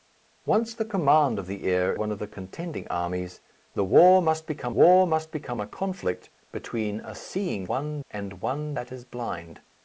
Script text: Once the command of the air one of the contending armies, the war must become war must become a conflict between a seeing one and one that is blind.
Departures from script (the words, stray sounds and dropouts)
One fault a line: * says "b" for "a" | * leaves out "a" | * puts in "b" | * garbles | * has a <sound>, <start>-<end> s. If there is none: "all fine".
all fine